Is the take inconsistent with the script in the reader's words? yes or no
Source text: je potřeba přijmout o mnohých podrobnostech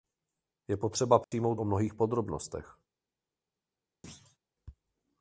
no